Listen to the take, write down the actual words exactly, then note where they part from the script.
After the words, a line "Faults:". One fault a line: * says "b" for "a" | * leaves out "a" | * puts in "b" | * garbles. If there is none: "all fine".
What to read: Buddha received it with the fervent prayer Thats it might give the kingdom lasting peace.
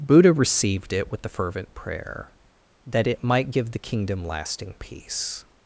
Buddha received it with the fervent prayer That it might give the kingdom lasting peace.
Faults:
* says "That" for "Thats"